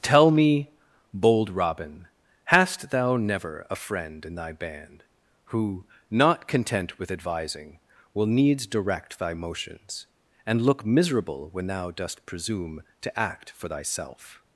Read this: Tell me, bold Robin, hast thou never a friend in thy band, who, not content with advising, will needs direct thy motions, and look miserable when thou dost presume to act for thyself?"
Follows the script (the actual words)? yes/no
yes